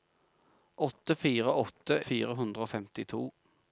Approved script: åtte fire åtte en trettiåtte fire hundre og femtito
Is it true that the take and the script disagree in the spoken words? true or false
true